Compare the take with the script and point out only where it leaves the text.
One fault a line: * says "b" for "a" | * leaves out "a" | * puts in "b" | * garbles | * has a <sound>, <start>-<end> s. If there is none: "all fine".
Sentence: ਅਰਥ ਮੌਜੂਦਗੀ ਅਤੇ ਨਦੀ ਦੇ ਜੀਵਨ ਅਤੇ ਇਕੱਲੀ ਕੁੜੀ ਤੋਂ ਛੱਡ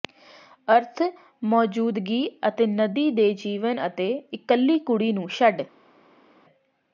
* says "ਨੂੰ" for "ਤੋਂ"